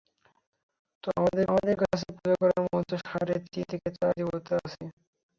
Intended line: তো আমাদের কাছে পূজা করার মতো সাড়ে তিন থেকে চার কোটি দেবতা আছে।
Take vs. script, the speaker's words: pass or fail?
fail